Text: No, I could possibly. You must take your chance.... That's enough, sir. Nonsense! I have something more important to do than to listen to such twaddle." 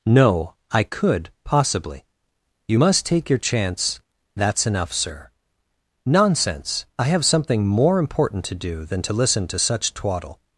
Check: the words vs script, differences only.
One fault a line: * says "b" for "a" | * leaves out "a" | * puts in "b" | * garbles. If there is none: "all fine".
all fine